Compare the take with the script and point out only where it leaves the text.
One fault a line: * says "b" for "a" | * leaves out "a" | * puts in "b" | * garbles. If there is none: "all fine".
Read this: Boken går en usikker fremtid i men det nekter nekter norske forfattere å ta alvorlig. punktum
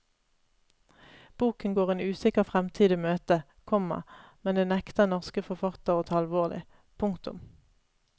* puts in "møte komma"
* leaves out "nekter"